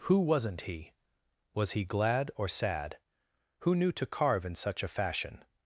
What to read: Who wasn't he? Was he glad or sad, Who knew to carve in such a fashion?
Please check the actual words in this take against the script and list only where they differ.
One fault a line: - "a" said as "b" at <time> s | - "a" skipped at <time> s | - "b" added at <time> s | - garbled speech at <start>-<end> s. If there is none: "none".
none